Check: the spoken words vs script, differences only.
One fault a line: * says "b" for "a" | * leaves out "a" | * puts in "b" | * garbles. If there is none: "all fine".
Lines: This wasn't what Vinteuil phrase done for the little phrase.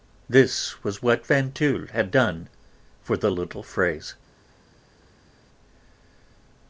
* says "was" for "wasn't"
* says "had" for "phrase"